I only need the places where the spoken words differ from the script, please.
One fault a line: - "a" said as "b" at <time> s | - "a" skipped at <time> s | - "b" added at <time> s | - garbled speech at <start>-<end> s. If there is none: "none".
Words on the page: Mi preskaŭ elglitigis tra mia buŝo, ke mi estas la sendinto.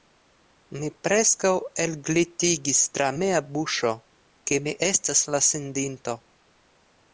none